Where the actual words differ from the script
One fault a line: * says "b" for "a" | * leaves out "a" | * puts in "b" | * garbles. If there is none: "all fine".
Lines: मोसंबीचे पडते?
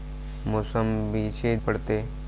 all fine